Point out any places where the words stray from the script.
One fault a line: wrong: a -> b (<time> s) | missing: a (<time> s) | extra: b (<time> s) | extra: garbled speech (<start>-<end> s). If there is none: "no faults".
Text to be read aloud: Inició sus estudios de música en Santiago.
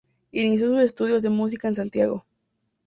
no faults